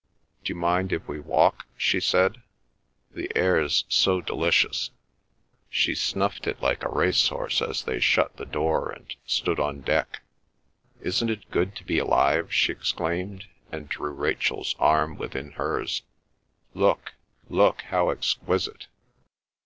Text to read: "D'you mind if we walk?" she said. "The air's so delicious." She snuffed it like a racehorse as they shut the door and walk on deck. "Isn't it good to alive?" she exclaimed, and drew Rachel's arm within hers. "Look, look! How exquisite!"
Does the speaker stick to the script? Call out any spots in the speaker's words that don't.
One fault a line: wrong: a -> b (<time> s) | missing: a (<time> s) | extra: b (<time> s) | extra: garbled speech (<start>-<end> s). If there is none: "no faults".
wrong: walk -> stood (9.3 s)
extra: be (11.8 s)